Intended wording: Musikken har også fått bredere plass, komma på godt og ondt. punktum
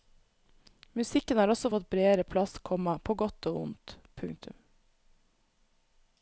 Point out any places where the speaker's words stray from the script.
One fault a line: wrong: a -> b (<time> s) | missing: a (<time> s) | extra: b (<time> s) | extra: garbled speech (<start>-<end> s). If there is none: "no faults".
no faults